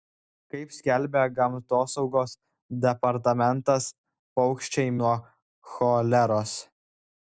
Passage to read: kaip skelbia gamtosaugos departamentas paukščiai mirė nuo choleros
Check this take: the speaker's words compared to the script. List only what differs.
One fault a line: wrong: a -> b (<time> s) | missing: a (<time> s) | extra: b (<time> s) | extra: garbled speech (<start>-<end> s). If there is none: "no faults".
missing: mirė (5.0 s)